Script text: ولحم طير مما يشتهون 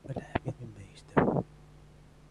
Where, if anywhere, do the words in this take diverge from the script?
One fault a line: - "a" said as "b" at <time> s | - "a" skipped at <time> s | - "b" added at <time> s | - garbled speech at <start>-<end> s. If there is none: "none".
- "طير" skipped at 0.5 s